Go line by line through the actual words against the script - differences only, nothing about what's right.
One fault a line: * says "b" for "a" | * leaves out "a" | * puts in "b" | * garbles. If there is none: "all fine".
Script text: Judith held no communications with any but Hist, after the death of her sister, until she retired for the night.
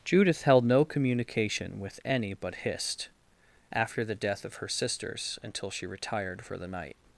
* says "communication" for "communications"
* says "sisters" for "sister"